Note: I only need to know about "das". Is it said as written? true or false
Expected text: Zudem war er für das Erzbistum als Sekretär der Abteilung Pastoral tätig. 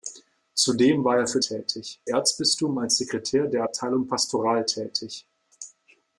false